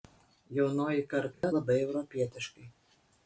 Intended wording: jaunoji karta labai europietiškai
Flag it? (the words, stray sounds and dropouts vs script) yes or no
yes